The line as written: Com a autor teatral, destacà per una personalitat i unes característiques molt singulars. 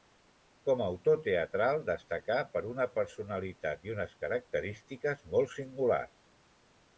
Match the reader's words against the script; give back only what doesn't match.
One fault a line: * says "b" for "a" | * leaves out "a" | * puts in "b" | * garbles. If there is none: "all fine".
all fine